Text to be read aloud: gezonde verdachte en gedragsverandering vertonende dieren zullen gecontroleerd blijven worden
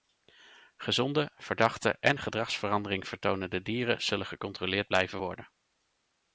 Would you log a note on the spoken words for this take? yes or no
no